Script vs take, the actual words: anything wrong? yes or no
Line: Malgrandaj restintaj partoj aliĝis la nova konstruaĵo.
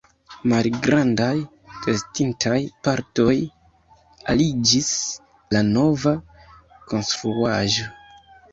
no